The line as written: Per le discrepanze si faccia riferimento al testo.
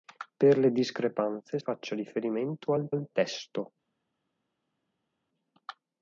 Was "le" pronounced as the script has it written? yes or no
yes